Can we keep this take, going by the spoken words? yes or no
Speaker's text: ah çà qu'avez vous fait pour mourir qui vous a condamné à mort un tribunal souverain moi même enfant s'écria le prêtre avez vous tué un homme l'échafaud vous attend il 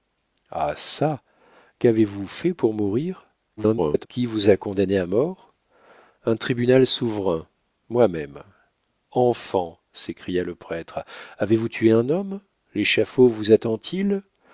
no